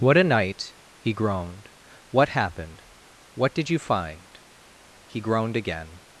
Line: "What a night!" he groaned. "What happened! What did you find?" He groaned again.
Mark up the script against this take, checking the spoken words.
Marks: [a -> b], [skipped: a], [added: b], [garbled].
"What a night!" he groaned. "What happened! What did you find?" He groaned again.